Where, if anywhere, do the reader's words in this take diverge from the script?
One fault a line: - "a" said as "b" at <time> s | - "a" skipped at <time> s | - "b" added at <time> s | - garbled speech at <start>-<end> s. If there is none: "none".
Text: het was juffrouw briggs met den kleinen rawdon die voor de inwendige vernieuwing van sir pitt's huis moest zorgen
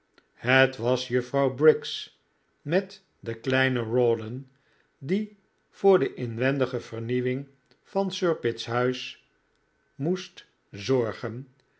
none